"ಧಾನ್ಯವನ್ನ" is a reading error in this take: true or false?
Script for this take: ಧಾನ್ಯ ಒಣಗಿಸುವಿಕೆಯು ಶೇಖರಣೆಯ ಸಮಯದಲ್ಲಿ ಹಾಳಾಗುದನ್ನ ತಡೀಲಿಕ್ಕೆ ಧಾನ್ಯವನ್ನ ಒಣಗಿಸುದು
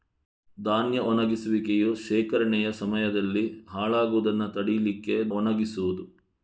true